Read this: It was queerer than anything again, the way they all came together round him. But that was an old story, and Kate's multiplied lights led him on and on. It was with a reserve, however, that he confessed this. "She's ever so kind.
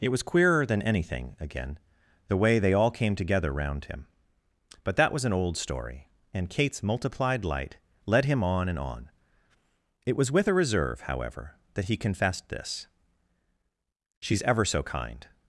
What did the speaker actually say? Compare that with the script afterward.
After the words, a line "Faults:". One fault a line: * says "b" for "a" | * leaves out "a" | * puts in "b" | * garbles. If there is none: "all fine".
It was queerer than anything again, the way they all came together round him. But that was an old story, and Kate's multiplied light led him on and on. It was with a reserve, however, that he confessed this. "She's ever so kind.
Faults:
* says "light" for "lights"